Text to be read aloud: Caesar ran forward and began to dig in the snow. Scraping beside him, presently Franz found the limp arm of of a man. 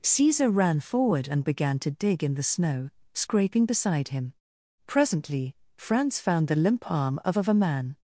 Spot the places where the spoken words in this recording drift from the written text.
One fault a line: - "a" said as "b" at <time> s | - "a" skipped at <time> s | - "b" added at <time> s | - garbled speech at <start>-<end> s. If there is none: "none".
none